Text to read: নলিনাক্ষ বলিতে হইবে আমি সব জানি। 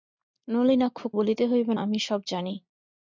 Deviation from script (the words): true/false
false